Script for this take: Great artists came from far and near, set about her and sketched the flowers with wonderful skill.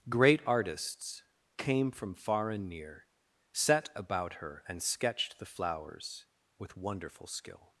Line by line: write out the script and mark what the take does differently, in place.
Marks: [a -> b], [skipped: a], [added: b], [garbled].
Great artists came from far and near, set about her and sketched the flowers with wonderful skill.